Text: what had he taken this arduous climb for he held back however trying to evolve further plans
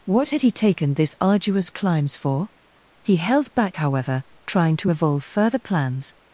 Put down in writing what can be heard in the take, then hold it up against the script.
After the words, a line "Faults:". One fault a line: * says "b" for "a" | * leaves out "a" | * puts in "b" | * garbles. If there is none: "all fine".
what had he taken this arduous climbs for he held back however trying to evolve further plans
Faults:
* says "climbs" for "climb"